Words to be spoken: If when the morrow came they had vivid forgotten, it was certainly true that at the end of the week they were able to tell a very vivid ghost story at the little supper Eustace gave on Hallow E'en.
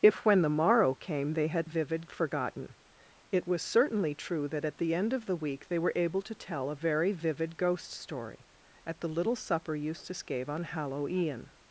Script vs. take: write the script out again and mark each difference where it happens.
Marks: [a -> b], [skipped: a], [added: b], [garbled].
If when the morrow came they had vivid forgotten, it was certainly true that at the end of the week they were able to tell a very vivid ghost story at the little supper Eustace gave on Hallow E'en.